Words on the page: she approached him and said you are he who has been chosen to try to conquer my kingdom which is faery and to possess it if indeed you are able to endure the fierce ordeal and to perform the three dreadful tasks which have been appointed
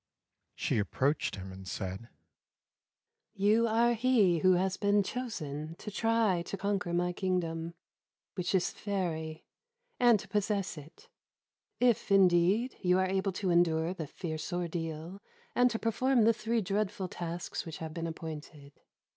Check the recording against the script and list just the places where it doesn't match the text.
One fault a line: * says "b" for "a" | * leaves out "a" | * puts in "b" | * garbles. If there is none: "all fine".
all fine